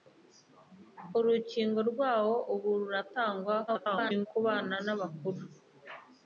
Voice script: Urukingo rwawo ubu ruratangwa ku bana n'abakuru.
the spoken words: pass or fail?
fail